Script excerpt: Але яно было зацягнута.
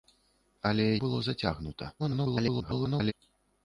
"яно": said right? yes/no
no